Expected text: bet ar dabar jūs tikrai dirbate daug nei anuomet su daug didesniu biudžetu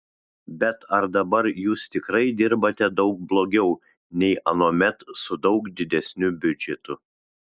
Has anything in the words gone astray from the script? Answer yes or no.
yes